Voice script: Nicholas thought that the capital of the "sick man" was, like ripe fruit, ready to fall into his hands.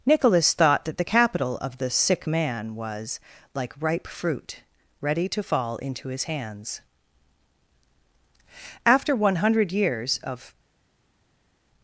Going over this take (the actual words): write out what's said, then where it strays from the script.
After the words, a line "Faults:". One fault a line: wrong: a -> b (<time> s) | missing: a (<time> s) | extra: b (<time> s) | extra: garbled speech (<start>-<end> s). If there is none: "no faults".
Nicholas thought that the capital of the "sick man" was, like ripe fruit, ready to fall into his hands. After one hundred years of
Faults:
extra: After one hundred years of (8.9 s)